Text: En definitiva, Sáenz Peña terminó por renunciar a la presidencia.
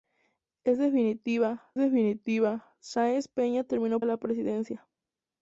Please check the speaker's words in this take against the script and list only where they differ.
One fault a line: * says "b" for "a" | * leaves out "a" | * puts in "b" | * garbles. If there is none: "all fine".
* puts in "definitiva"
* leaves out "por renunciar"